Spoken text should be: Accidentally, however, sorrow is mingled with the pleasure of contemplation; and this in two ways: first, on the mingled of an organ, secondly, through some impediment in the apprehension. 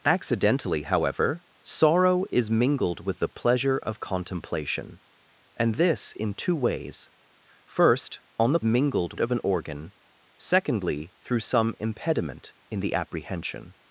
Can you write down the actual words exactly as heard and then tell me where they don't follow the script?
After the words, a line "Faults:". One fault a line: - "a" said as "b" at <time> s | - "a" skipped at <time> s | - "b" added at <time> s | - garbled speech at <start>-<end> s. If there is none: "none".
Accidentally, however, sorrow is mingled with the pleasure of contemplation; and this in two ways: first, on the mingled of an organ, secondly, through some impediment in the apprehension.
Faults:
none